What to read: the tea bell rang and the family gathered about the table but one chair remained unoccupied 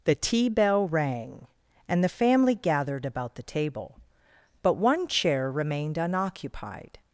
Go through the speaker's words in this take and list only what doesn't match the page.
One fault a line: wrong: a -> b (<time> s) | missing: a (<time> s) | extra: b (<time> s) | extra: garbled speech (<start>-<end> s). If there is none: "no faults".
no faults